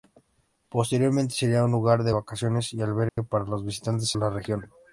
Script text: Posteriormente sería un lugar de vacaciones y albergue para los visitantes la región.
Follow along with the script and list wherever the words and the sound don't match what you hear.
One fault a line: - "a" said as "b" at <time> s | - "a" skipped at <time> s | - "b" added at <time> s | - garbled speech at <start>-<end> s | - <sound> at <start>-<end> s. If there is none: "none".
- dropout at 3.1-3.2 s